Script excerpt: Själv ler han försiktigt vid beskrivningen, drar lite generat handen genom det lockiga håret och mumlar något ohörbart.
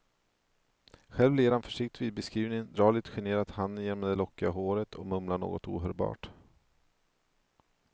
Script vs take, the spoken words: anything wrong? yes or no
no